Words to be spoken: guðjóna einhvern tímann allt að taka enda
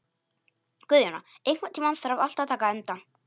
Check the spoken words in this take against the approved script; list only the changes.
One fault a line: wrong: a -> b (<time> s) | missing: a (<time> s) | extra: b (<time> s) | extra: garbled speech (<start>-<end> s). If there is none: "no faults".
extra: þarf (2.0 s)